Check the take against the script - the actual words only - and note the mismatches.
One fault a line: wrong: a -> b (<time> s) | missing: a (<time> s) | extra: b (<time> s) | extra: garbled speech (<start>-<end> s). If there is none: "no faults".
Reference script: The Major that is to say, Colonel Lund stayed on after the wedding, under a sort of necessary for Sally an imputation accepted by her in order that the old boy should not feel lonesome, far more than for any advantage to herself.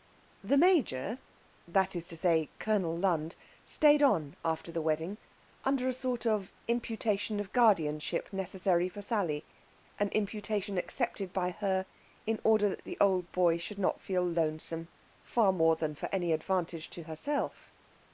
extra: imputation of guardianship (6.7 s)